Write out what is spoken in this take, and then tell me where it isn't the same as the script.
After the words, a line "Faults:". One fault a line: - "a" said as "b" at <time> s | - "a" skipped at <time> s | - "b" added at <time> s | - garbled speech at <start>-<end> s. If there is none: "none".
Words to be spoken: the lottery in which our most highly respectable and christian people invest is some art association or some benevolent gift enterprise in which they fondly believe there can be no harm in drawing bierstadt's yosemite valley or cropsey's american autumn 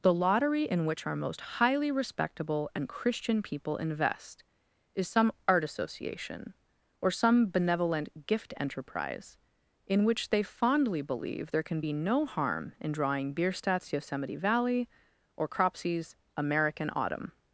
the lottery in which our most highly respectable and christian people invest is some art association or some benevolent gift enterprise in which they fondly believe there can be no harm in drawing bierstadt's yosemite valley or cropsey's american autumn
Faults:
none